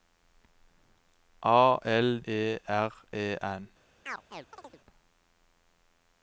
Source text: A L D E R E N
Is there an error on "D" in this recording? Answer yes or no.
yes